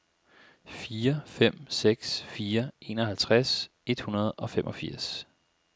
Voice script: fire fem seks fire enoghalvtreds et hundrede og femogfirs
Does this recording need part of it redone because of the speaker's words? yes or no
no